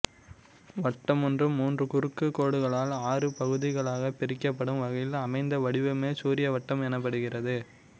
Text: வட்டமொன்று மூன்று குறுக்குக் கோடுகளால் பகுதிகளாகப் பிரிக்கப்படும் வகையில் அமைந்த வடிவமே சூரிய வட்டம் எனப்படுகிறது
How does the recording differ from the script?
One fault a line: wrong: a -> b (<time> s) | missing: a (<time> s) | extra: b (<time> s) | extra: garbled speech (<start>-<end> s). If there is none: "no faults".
extra: ஆறு (3.1 s)